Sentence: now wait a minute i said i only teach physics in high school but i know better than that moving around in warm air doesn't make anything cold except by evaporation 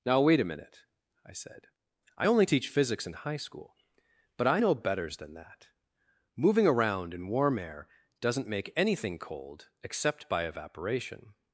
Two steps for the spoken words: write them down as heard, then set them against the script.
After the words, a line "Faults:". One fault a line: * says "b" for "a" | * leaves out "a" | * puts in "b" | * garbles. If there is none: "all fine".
now wait a minute i said i only teach physics in high school but i know betters than that moving around in warm air doesn't make anything cold except by evaporation
Faults:
* says "betters" for "better"